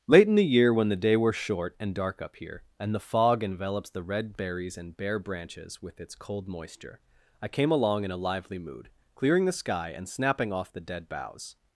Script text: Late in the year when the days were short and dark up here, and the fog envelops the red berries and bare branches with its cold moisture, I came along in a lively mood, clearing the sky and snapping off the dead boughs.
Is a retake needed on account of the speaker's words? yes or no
yes